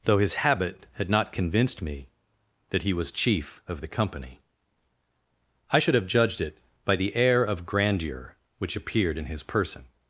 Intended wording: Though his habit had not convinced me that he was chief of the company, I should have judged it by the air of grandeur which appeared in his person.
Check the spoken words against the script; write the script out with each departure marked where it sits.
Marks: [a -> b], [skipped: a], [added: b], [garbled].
Though his habit had not convinced me that he was chief of the company, I should have judged it by the air of grandeur which appeared in his person.